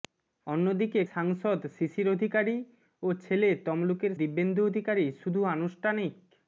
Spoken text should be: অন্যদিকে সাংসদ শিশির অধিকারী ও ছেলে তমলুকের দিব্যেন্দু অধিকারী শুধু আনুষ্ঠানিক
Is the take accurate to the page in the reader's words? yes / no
yes